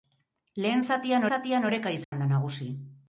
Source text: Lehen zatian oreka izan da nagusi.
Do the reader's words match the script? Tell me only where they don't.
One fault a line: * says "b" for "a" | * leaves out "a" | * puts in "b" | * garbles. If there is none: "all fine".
* puts in "zatian"